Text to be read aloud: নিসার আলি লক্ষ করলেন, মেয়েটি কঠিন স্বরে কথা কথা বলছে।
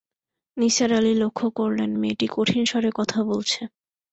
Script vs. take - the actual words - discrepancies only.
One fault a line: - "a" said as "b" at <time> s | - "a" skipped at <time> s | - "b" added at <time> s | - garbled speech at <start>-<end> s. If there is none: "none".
- "কথা" skipped at 3.2 s